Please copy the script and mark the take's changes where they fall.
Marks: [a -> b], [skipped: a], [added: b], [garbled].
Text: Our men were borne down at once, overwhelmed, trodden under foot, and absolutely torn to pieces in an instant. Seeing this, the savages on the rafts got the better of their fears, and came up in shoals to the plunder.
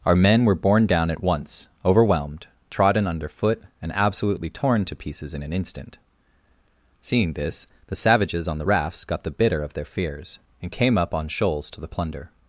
Our men were borne down at once, overwhelmed, trodden under foot, and absolutely torn to pieces in an instant. Seeing this, the savages on the rafts got the [better -> bitter] of their fears, and came up [in -> on] shoals to the plunder.